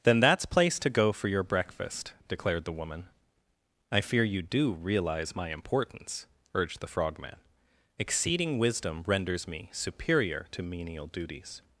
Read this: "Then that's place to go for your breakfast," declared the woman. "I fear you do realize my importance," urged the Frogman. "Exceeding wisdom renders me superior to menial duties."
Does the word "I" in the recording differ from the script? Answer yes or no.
no